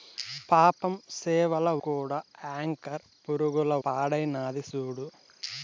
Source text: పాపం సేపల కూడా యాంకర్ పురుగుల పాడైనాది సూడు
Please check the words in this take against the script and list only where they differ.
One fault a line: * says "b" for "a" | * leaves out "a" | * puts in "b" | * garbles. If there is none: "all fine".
all fine